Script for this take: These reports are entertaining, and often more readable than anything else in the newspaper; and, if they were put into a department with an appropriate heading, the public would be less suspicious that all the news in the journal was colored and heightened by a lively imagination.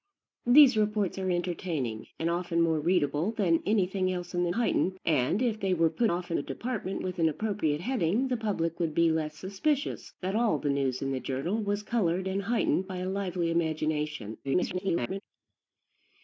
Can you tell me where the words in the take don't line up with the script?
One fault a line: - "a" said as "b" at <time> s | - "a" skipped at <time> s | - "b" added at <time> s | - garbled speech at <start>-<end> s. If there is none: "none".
- "newspaper" said as "heightened" at 4.5 s
- "into" said as "often" at 6.1 s
- garbled speech at 14.4-15.2 s